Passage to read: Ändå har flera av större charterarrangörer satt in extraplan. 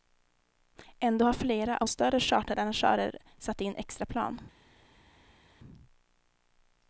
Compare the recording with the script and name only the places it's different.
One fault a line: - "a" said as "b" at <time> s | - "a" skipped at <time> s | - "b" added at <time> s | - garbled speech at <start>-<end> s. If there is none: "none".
none